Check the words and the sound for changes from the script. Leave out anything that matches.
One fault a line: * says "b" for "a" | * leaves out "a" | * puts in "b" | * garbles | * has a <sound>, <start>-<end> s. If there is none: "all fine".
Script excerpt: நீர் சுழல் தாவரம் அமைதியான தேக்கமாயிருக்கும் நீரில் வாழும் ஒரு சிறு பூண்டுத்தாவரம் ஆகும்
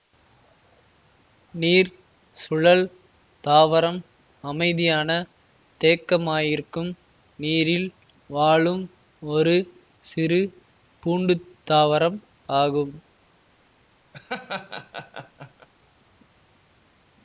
* has a laugh, 14.1-15.7 s